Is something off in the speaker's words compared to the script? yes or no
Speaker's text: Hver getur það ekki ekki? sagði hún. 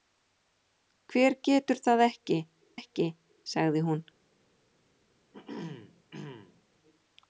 no